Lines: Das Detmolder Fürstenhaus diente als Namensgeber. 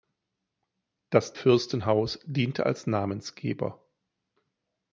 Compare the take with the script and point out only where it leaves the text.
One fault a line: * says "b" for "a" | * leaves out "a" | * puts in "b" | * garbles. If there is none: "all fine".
* leaves out "Detmolder"